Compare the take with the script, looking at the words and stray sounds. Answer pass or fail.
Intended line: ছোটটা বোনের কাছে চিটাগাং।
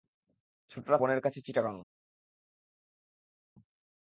pass